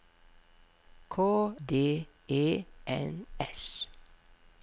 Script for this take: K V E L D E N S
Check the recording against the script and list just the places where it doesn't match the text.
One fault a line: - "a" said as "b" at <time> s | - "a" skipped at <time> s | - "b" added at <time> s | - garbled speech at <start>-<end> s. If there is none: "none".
- "V E L" skipped at 1.1 s